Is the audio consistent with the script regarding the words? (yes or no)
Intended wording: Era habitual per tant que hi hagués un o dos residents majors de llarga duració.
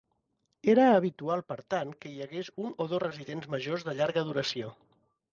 yes